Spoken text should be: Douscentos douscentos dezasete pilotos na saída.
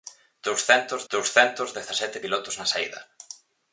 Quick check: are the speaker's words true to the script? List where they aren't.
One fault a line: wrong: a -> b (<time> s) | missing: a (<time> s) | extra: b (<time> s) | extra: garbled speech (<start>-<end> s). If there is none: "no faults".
no faults